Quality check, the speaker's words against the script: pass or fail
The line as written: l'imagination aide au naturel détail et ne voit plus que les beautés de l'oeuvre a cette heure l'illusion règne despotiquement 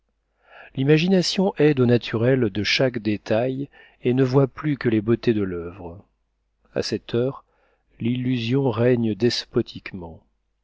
fail